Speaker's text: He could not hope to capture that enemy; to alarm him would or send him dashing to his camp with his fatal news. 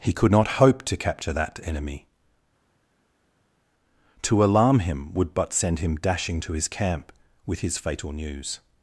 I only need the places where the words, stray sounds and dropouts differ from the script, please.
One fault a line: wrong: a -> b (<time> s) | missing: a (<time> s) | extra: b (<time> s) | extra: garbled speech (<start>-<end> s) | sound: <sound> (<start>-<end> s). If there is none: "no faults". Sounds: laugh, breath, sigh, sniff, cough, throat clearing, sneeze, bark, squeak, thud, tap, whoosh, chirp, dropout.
wrong: or -> but (5.3 s)